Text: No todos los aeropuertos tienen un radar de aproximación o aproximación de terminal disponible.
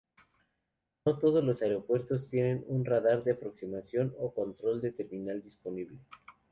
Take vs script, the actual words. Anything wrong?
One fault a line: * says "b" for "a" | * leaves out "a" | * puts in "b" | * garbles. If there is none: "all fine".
* says "control" for "aproximación"